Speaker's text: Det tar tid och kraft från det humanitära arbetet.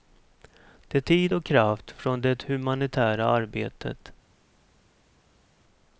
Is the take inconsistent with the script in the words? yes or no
yes